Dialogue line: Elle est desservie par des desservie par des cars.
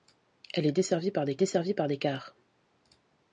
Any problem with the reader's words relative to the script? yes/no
no